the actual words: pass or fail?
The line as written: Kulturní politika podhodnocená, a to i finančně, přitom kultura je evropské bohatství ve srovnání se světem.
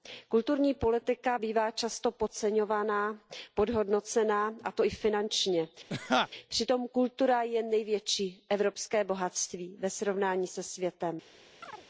fail